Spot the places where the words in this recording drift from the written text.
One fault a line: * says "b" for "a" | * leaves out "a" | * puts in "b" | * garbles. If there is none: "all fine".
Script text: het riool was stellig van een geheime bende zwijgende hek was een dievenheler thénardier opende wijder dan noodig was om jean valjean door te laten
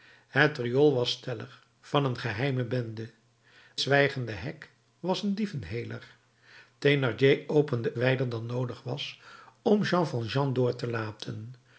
all fine